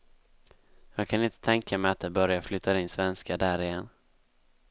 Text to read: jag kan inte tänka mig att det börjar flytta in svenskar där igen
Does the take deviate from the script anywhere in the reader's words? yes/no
no